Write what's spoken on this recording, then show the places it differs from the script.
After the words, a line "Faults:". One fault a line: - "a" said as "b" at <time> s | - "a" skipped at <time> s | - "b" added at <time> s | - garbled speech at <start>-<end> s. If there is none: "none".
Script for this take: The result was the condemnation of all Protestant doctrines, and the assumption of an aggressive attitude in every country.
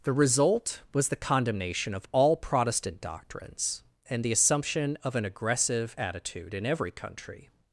The result was the condemnation of all Protestant doctrines, and the assumption of an aggressive attitude in every country.
Faults:
none